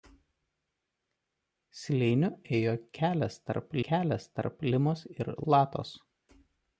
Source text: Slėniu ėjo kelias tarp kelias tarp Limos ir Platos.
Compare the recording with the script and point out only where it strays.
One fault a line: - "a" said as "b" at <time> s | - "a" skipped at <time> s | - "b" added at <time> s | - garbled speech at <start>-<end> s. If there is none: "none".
none